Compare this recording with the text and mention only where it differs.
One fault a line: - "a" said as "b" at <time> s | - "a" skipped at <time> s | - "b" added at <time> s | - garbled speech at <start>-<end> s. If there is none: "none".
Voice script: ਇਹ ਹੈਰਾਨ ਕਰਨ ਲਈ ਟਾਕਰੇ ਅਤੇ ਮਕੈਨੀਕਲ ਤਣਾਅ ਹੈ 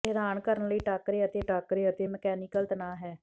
- "ਟਾਕਰੇ ਅਤੇ" added at 1.4 s